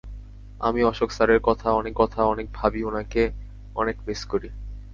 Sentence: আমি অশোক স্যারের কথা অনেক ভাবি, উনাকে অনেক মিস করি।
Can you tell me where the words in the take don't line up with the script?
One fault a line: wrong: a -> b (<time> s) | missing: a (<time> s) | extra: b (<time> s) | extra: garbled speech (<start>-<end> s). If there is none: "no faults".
extra: কথা অনেক (1.9 s)